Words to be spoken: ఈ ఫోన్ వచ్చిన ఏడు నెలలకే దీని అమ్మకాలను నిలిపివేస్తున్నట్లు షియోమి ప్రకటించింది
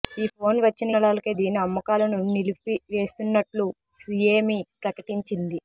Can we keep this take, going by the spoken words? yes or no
no